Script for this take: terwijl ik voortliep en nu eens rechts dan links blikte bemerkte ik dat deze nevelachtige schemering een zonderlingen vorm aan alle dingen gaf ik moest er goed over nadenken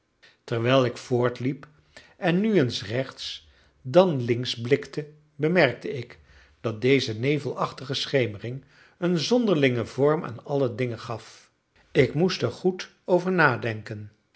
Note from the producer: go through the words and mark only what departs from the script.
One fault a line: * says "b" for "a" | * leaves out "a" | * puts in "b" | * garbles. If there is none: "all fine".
all fine